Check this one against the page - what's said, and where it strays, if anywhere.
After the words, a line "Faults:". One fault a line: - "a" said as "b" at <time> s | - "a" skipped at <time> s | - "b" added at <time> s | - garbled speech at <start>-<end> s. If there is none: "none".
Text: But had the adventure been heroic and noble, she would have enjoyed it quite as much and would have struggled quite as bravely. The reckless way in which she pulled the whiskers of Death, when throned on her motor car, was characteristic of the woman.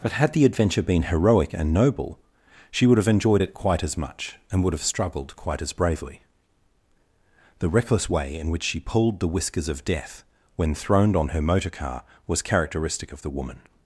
But had the adventure been heroic and noble, she would have enjoyed it quite as much and would have struggled quite as bravely. The reckless way in which she pulled the whiskers of Death, when throned on her motor car, was characteristic of the woman.
Faults:
none